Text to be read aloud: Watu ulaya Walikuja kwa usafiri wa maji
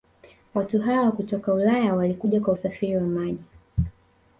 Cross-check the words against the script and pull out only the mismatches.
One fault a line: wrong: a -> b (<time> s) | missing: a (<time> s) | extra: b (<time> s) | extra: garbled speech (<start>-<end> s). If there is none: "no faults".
extra: hawa kutoka (0.8 s)